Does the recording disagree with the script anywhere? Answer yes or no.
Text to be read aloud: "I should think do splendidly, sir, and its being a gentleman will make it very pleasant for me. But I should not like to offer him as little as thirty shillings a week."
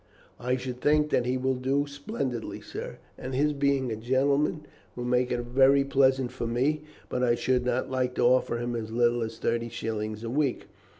yes